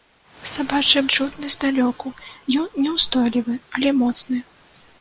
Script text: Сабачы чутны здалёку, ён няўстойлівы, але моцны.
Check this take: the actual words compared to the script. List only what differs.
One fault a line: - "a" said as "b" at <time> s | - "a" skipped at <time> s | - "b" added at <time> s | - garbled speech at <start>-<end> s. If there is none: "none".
none